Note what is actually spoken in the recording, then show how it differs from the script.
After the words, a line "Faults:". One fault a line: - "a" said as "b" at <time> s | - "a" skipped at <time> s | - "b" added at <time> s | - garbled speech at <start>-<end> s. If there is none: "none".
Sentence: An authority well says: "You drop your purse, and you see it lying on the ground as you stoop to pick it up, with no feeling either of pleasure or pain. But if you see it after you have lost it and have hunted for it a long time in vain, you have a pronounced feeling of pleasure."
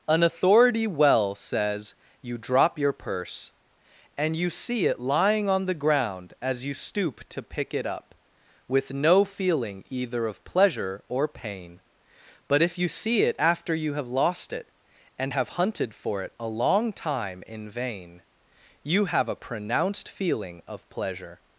An authority well says: "You drop your purse, and you see it lying on the ground as you stoop to pick it up, with no feeling either of pleasure or pain. But if you see it after you have lost it and have hunted for it a long time in vain, you have a pronounced feeling of pleasure."
Faults:
none